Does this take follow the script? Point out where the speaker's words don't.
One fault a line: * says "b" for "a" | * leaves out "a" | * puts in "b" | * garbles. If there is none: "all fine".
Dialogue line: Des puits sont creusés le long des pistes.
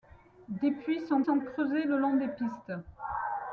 * puts in "sont"